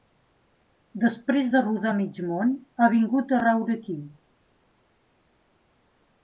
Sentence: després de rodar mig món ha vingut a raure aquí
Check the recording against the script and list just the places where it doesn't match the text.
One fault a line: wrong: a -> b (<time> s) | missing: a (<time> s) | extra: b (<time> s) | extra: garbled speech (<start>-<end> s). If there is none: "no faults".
no faults